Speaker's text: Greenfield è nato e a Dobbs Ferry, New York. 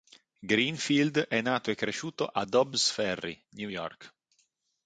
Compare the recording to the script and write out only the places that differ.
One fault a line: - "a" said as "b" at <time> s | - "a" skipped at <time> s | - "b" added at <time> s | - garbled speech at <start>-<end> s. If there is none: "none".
- "cresciuto" added at 1.8 s